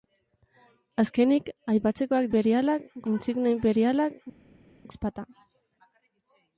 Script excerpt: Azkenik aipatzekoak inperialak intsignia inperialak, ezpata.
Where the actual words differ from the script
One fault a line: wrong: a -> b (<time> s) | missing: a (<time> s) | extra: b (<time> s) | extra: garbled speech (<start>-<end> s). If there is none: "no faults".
no faults